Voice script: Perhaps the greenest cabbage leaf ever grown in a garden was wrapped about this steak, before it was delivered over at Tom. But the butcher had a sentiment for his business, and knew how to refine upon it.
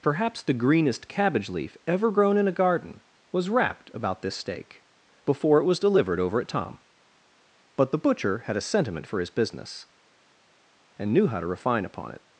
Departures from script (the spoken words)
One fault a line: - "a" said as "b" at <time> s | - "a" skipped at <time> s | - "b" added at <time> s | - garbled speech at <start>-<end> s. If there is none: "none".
none